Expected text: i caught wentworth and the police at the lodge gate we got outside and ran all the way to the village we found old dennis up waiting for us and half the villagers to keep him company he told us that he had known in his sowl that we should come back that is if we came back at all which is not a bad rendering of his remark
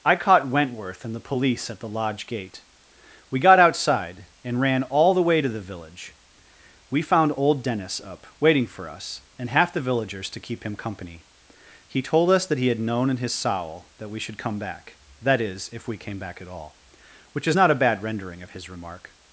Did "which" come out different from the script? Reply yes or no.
no